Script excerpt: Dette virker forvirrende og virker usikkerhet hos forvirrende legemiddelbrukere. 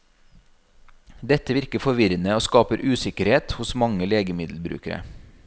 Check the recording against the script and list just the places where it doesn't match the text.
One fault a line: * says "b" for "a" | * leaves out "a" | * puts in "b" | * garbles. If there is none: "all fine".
* says "skaper" for "virker"
* says "mange" for "forvirrende"